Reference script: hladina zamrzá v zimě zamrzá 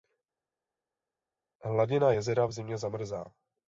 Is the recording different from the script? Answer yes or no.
yes